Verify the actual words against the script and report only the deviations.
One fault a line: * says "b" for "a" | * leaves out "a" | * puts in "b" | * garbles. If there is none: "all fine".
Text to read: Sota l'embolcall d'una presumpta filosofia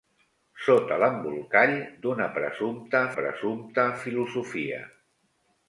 * puts in "presumpta"